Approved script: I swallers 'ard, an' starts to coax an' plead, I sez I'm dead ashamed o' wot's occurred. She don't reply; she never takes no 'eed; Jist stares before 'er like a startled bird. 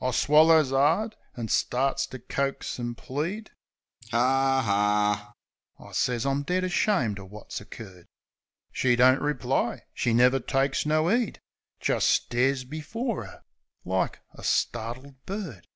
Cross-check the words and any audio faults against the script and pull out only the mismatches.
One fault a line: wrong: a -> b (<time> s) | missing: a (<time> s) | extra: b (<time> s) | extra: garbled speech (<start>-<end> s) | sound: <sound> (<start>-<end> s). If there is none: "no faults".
sound: laugh (4.0-5.3 s)